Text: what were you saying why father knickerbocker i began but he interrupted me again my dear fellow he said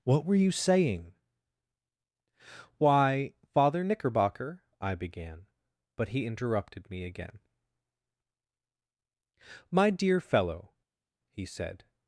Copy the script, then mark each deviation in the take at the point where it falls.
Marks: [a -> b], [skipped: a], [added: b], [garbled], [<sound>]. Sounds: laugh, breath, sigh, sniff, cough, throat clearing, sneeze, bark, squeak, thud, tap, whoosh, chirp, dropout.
what were you saying why father knickerbocker i began but he interrupted me again my dear fellow he said